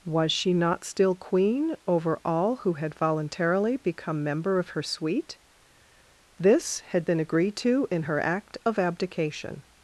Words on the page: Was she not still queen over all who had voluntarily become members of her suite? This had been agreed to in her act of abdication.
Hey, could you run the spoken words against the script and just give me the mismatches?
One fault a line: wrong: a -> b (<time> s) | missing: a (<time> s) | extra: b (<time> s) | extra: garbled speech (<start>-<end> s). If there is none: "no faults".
wrong: members -> member (4.2 s)